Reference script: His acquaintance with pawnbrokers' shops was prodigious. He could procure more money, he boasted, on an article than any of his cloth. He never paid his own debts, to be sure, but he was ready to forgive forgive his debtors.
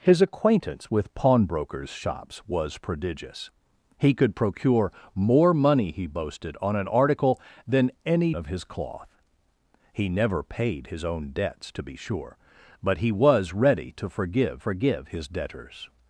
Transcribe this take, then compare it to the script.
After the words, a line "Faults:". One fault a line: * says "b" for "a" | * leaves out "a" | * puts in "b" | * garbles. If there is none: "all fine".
His acquaintance with pawnbrokers' shops was prodigious. He could procure more money, he boasted, on an article than any of his cloth. He never paid his own debts, to be sure, but he was ready to forgive forgive his debtors.
Faults:
all fine